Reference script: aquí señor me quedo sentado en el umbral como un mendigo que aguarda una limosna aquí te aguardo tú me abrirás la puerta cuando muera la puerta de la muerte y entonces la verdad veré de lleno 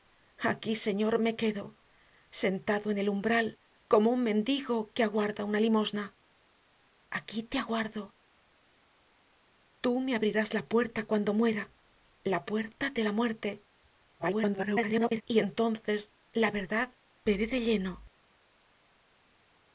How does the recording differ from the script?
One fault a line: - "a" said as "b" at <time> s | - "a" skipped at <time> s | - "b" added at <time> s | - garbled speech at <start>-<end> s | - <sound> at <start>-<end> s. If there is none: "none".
- garbled speech at 14.2-15.2 s